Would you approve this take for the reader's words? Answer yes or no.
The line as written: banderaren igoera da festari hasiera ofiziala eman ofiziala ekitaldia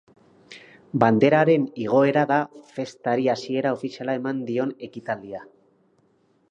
no